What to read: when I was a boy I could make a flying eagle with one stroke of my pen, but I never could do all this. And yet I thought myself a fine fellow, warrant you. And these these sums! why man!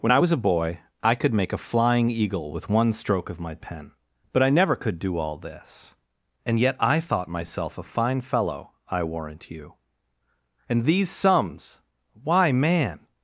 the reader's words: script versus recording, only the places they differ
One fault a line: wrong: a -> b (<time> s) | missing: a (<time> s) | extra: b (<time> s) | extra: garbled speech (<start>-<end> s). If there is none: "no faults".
extra: I (8.9 s)
missing: these (11.1 s)